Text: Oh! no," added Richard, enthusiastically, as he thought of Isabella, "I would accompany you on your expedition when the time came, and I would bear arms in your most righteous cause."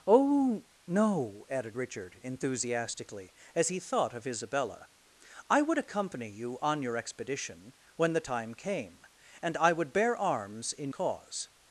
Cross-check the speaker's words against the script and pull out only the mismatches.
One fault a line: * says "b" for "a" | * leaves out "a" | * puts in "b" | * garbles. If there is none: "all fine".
* leaves out "your most righteous"